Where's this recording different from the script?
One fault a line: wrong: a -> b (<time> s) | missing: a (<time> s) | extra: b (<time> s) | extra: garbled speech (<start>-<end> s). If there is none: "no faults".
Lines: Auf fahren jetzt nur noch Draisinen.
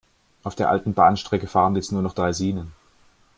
extra: der alten Bahnstrecke (0.6 s)